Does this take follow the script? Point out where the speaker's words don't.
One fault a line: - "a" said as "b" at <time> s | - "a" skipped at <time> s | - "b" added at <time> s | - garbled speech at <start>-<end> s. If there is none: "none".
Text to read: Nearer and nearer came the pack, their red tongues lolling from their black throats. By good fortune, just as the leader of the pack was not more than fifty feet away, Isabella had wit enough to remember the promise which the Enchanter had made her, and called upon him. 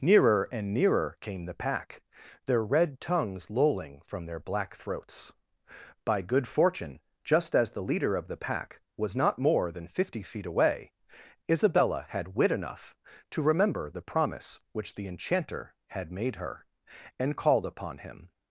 none